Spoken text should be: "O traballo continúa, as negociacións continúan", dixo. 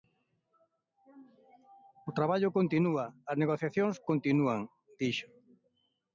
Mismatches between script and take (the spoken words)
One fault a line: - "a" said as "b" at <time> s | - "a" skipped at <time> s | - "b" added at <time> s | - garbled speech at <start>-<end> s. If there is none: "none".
none